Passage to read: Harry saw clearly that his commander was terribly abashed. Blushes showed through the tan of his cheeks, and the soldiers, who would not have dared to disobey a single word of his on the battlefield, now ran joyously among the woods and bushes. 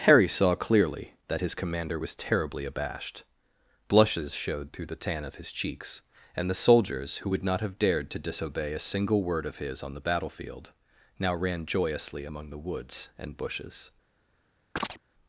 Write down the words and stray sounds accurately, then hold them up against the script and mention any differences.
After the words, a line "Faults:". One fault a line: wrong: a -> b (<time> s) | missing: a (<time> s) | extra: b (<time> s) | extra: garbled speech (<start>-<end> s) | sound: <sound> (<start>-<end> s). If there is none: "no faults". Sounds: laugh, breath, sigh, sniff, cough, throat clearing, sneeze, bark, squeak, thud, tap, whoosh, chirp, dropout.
Harry saw clearly that his commander was terribly abashed. Blushes showed through the tan of his cheeks, and the soldiers, who would not have dared to disobey a single word of his on the battlefield, now ran joyously among the woods and bushes.
Faults:
sound: chirp (14.8-15.0 s)